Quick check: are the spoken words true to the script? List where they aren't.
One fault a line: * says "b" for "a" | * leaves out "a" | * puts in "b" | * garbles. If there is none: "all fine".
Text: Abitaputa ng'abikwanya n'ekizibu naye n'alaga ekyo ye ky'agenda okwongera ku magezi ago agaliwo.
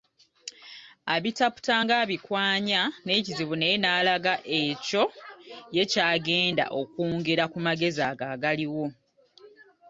all fine